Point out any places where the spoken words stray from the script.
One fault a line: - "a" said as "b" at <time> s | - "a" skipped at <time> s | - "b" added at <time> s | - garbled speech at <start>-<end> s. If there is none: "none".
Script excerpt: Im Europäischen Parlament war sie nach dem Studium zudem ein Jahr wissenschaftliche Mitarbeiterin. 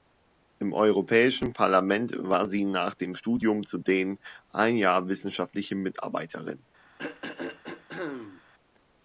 none